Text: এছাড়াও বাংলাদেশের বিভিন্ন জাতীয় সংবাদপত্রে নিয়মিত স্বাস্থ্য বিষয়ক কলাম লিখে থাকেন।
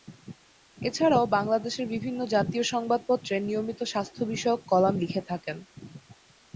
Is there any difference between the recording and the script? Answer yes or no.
no